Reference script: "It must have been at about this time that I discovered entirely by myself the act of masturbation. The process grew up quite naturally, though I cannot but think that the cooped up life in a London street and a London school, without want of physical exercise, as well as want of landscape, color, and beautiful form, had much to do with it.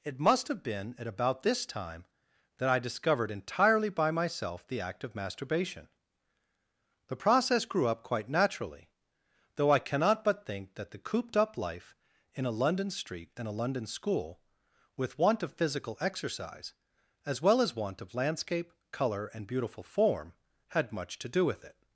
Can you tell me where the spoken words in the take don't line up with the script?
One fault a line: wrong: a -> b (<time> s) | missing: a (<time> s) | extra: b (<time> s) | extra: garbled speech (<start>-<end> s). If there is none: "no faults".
wrong: without -> with (15.0 s)